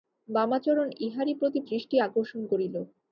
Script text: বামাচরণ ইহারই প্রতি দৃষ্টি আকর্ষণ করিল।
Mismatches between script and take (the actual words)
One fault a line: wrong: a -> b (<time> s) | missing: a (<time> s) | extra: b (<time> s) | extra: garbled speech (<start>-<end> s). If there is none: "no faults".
no faults